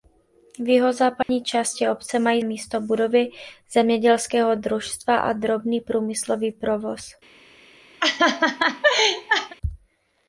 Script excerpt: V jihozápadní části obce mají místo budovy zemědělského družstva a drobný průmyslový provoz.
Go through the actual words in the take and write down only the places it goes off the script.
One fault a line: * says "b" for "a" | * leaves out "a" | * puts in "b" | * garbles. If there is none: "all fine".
all fine